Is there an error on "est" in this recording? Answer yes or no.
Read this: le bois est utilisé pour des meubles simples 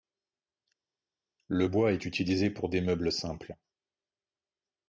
no